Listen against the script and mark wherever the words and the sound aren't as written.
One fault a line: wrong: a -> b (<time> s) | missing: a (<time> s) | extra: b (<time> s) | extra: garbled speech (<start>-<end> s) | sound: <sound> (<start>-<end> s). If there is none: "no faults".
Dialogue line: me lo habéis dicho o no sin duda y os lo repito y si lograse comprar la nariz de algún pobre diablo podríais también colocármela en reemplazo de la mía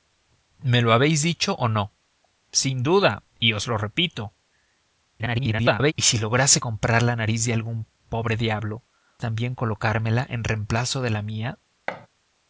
extra: garbled speech (5.2-5.9 s)
missing: podríais (8.8 s)
sound: thud (11.9-12.1 s)